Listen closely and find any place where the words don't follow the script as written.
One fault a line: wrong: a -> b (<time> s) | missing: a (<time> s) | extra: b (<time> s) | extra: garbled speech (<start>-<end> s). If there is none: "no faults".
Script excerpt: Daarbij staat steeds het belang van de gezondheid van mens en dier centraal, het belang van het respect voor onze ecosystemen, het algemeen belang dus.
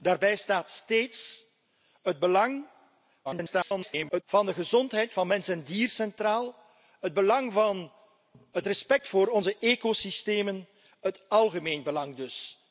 extra: garbled speech (3.2-4.2 s)